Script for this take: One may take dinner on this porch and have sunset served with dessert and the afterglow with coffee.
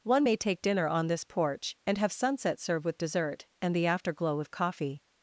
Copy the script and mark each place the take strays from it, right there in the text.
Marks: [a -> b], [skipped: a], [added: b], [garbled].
One may take dinner on this porch and have sunset [served -> serve] with dessert and the afterglow with coffee.